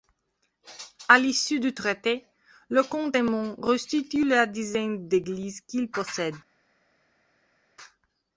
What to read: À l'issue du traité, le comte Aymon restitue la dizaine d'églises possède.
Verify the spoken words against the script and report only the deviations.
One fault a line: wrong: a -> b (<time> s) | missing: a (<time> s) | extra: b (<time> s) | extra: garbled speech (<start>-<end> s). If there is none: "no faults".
extra: qu'il (5.6 s)